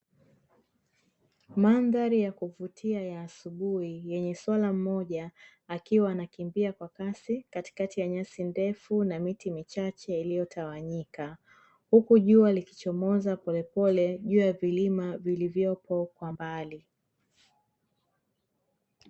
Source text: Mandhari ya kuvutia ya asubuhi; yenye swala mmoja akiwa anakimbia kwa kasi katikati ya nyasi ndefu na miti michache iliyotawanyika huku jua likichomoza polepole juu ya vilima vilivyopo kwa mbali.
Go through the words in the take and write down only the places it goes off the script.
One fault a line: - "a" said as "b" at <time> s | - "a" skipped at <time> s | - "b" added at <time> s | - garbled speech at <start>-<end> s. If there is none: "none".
none